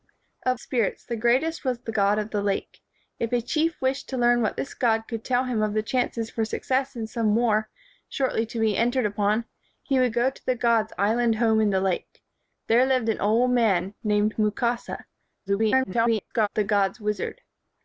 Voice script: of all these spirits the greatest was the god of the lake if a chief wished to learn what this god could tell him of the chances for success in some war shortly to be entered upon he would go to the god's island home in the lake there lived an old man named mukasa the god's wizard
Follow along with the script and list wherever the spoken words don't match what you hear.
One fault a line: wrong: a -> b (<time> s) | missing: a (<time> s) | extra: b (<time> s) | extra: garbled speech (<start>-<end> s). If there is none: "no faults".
missing: all these (0.6 s)
extra: garbled speech (15.5-16.5 s)